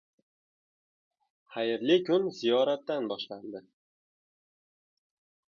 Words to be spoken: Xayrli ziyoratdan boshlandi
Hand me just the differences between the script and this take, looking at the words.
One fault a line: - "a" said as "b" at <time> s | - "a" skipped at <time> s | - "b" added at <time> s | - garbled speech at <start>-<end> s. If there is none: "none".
- "kun" added at 2.1 s